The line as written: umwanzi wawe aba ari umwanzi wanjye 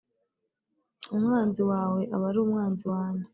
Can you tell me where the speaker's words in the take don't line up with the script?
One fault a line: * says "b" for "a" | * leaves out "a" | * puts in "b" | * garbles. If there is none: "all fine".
all fine